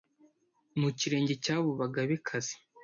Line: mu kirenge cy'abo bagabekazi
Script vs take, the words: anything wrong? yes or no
no